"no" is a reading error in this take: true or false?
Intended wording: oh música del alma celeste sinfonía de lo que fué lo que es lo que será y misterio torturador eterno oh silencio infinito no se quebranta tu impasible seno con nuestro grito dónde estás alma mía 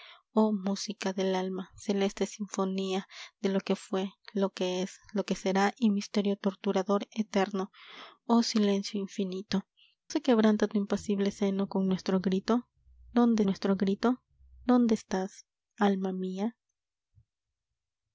true